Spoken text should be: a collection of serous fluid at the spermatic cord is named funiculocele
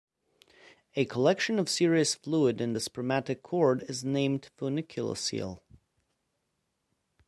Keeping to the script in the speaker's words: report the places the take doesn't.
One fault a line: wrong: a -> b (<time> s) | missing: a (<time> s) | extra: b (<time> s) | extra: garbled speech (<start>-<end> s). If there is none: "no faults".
wrong: at -> in (2.6 s)